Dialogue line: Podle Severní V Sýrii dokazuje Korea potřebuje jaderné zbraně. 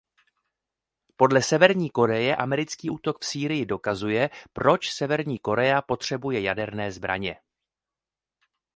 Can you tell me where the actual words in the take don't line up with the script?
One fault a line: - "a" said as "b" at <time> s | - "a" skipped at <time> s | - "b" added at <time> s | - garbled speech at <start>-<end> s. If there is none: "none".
- "Koreje americký útok" added at 1.9 s
- "proč Severní" added at 4.5 s